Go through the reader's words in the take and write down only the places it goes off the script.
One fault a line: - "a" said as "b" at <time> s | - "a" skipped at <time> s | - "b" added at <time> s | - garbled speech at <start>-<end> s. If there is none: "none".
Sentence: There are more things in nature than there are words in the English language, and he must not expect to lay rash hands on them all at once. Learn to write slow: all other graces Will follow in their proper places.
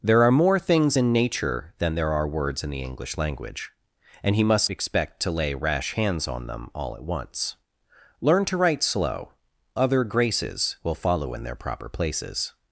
- "not" skipped at 4.7 s
- "all" skipped at 9.3 s